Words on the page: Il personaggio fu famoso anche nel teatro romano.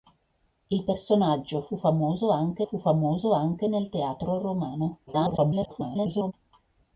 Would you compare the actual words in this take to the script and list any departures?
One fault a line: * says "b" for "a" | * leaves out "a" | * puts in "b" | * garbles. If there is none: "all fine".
* puts in "fu famoso anche"
* garbles